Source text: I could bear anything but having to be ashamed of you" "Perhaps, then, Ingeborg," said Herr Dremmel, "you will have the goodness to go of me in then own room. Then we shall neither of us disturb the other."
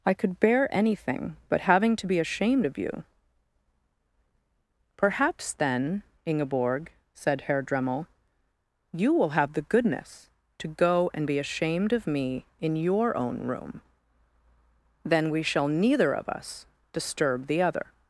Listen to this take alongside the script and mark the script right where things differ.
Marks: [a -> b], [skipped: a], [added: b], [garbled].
I could bear anything but having to be ashamed of you" "Perhaps, then, Ingeborg," said Herr Dremmel, "you will have the goodness to go [added: and be ashamed] of me in [then -> your] own room. Then we shall neither of us disturb the other."